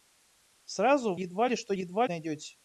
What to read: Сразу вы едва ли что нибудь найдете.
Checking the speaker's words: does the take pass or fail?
fail